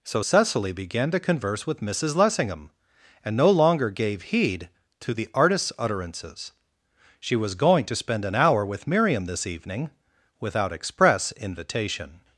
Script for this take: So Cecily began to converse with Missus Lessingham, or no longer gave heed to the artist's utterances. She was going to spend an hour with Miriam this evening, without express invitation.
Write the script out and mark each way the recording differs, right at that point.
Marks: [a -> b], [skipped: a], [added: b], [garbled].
So Cecily began to converse with Missus Lessingham, [or -> and] no longer gave heed to the artist's utterances. She was going to spend an hour with Miriam this evening, without express invitation.